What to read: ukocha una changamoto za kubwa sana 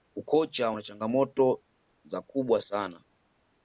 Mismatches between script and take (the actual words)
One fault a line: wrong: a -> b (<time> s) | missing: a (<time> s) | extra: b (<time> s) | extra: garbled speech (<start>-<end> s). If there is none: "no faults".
no faults